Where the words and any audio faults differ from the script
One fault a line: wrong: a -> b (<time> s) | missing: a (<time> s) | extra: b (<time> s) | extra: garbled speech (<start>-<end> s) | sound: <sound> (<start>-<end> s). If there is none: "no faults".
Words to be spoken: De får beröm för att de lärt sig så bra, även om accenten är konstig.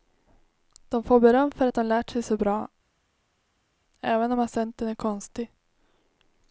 no faults